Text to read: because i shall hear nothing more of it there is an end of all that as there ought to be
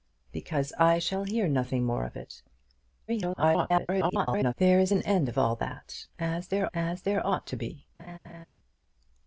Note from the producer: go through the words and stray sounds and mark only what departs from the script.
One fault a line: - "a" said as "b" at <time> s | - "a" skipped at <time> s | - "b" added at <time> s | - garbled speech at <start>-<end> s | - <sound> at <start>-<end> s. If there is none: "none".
- garbled speech at 3.1-4.5 s
- "as there" added at 6.7 s
- laugh at 8.0-8.5 s